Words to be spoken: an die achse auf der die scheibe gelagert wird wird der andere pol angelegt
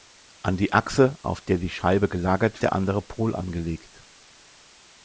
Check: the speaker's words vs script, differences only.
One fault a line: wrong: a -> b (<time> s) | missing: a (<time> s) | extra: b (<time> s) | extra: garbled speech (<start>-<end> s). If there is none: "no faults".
missing: wird wird (2.6 s)